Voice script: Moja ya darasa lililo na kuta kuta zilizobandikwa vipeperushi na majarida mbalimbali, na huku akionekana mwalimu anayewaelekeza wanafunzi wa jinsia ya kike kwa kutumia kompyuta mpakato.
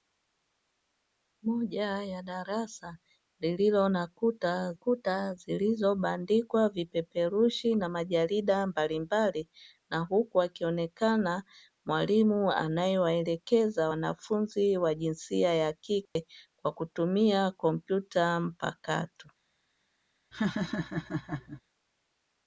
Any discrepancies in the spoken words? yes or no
no